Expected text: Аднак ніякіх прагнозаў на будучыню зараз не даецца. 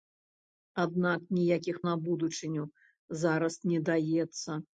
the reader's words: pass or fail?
fail